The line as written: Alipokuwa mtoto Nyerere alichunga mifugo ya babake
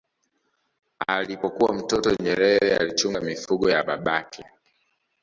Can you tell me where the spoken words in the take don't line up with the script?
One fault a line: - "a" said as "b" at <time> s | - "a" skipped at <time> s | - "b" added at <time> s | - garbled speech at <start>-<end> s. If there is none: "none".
none